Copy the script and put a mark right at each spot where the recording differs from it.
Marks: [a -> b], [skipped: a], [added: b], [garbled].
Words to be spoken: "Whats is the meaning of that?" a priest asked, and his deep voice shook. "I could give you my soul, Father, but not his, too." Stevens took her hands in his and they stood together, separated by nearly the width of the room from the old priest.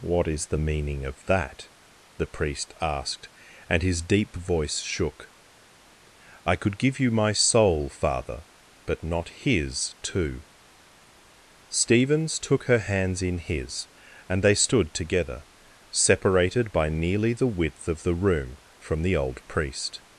["Whats -> What] is the meaning of that?" [a -> the] priest asked, and his deep voice shook. "I could give you my soul, Father, but not his, too." Stevens took her hands in his and they stood together, separated by nearly the width of the room from the old priest.